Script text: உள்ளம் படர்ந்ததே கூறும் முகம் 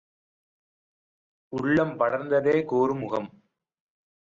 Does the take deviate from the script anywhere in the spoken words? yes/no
no